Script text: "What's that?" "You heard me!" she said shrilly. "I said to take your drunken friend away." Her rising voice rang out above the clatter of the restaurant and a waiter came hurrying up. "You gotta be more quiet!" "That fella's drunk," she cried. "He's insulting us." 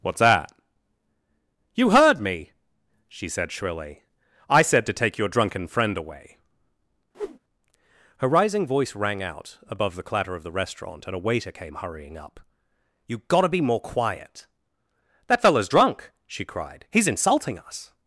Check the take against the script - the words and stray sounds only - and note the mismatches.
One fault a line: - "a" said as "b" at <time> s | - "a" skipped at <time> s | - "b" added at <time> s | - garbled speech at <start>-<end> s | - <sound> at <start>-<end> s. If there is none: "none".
- whoosh at 7.1-7.4 s